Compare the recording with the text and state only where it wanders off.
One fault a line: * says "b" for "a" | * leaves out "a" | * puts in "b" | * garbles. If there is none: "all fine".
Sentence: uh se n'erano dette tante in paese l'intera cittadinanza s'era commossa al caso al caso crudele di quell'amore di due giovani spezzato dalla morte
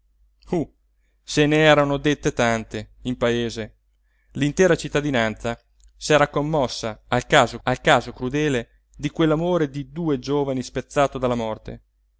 all fine